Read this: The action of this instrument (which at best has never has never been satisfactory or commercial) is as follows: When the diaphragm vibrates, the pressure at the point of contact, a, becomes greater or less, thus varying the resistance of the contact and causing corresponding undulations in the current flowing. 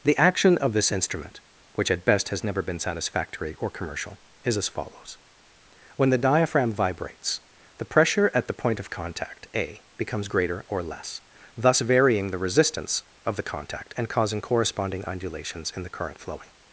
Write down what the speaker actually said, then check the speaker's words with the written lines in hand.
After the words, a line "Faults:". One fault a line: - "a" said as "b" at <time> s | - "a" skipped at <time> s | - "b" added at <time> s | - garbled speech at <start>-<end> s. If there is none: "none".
The action of this instrument (which at best has never been satisfactory or commercial) is as follows: When the diaphragm vibrates, the pressure at the point of contact, a, becomes greater or less, thus varying the resistance of the contact and causing corresponding undulations in the current flowing.
Faults:
- "has never" skipped at 2.6 s